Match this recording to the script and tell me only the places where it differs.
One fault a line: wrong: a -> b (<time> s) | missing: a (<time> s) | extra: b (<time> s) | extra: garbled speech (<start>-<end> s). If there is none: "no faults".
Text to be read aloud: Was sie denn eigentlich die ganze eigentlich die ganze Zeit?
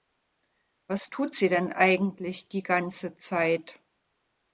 extra: tut (1.1 s)
missing: eigentlich die ganze (3.1 s)